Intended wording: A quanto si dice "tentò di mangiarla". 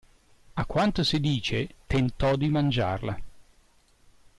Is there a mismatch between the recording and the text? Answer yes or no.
no